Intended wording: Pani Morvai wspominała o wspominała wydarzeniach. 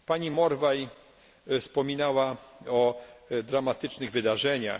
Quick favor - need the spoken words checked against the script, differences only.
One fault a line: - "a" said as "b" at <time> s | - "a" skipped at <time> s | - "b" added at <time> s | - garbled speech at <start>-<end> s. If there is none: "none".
- "wspominała" said as "dramatycznych" at 3.4 s